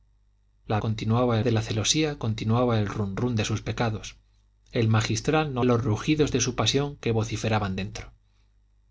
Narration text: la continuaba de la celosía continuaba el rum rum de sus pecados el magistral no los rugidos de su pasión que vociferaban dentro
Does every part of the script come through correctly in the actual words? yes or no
yes